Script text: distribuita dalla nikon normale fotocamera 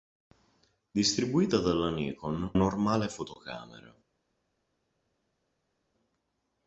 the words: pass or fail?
pass